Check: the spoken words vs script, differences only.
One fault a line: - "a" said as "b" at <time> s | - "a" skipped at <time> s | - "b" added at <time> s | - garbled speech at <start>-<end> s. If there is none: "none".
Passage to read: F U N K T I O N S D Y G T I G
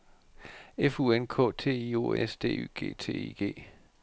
- "N" skipped at 2.1 s